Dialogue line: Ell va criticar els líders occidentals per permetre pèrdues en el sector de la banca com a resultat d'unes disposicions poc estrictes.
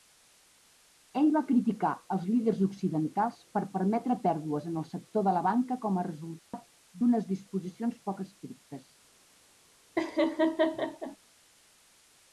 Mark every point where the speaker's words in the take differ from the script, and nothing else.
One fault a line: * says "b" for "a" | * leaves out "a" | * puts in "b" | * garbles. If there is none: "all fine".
all fine